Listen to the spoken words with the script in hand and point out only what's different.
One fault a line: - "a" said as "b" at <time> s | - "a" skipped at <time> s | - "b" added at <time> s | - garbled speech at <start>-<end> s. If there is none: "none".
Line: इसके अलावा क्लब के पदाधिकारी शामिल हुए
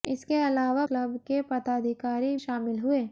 none